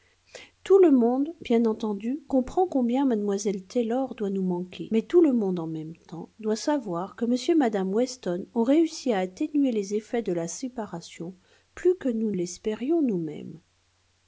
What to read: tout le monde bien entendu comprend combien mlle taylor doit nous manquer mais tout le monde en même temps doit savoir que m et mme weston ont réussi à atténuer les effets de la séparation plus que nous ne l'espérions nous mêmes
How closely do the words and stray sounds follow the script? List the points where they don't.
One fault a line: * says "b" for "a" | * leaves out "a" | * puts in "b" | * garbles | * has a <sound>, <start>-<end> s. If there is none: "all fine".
* leaves out "ne"